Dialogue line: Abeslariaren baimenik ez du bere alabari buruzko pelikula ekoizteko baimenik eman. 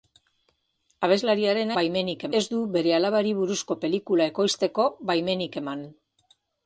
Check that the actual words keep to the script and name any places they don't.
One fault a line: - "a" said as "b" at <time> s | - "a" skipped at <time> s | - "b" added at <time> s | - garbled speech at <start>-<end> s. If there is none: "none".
none